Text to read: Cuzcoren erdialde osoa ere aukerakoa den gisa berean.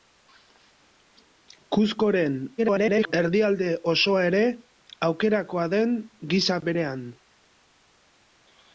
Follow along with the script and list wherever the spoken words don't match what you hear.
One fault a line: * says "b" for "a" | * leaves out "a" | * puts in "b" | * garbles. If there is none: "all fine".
* garbles